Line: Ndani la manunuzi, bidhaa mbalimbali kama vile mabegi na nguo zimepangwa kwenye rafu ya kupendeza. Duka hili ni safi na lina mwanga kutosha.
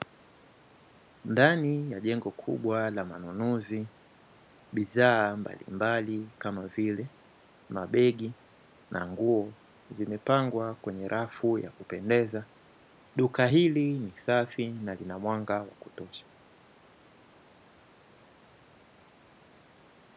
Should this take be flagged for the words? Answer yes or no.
yes